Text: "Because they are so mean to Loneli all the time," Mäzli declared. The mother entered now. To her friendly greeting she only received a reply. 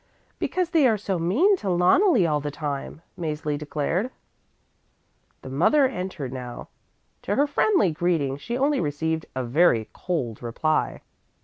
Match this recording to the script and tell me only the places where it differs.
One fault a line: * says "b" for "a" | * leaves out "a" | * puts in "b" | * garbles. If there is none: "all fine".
* puts in "very cold"